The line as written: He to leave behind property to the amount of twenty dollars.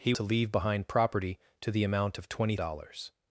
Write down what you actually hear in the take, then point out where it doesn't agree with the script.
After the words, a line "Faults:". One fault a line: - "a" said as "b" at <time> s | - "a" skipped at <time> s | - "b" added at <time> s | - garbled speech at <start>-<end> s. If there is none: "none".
He to leave behind property to the amount of twenty dollars.
Faults:
none